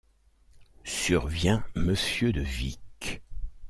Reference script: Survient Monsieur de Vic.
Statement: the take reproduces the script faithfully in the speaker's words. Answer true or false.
true